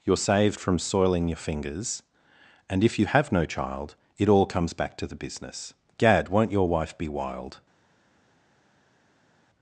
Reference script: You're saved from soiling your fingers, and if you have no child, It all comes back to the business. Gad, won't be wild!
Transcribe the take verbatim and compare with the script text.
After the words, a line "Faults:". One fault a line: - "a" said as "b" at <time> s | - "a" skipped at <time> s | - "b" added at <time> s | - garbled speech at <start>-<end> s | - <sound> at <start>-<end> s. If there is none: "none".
You're saved from soiling your fingers, and if you have no child, It all comes back to the business. Gad, won't your wife be wild!
Faults:
- "your wife" added at 6.5 s